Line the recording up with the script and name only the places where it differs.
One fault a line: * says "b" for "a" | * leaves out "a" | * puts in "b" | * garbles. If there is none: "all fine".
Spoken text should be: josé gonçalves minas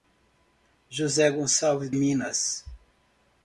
all fine